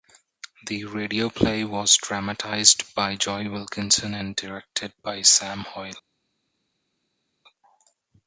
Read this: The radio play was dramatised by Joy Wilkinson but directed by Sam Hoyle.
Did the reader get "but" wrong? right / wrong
wrong